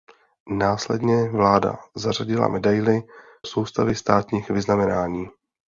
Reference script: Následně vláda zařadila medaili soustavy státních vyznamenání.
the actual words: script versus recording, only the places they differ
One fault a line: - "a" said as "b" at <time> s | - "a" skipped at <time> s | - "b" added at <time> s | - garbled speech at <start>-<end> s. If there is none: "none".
none